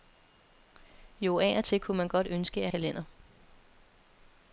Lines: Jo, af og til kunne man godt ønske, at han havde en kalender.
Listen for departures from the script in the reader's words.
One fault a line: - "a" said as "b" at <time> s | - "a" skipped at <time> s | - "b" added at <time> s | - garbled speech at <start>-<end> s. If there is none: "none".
- "han havde en" skipped at 2.7 s